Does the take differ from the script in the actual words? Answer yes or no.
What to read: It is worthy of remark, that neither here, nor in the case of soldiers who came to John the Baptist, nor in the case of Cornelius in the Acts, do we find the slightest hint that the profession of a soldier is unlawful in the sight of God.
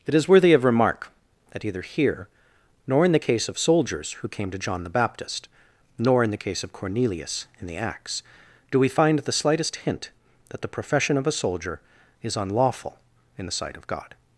yes